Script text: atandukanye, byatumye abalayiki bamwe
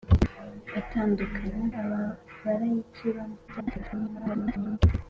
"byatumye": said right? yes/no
no